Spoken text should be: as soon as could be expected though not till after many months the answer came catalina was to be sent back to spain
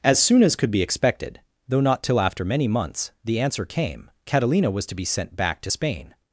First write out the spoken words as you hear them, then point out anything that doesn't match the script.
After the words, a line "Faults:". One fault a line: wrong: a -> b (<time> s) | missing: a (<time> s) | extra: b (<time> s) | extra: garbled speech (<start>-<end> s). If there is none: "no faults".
as soon as could be expected though not till after many months the answer came catalina was to be sent back to spain
Faults:
no faults